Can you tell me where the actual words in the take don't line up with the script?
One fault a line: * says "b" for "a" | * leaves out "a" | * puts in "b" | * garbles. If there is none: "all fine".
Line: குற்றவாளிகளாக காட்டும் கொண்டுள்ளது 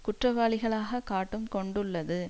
all fine